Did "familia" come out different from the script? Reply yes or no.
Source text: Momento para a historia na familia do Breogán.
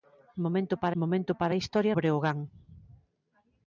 yes